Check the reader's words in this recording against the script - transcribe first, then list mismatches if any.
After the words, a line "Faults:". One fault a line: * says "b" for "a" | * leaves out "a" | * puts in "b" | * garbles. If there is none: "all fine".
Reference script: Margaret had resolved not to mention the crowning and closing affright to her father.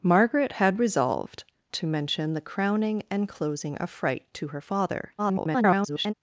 Margaret had resolved to mention the crowning and closing affright to her father. [garbled]
Faults:
* leaves out "not"
* garbles